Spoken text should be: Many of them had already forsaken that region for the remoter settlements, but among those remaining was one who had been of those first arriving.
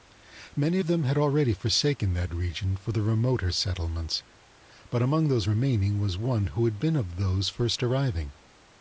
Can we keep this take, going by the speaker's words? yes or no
yes